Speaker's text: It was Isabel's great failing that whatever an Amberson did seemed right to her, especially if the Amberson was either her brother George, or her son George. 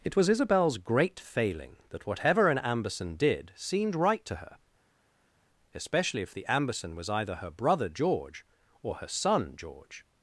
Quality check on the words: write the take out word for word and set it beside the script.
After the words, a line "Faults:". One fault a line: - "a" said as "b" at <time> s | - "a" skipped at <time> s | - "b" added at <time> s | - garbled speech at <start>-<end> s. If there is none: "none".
It was Isabel's great failing that whatever an Amberson did seemed right to her, especially if the Amberson was either her brother George, or her son George.
Faults:
none